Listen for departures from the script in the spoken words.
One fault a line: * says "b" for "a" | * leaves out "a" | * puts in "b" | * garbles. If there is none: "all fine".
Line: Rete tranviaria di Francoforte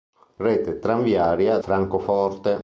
* leaves out "di"